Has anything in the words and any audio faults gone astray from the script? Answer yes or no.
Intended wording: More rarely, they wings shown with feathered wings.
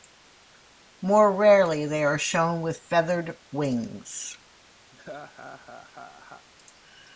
yes